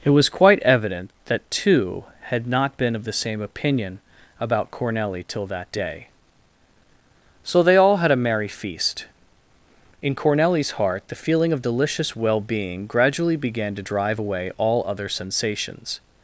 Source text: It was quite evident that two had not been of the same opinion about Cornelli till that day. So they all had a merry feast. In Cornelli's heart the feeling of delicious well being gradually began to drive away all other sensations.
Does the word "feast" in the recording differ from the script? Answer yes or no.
no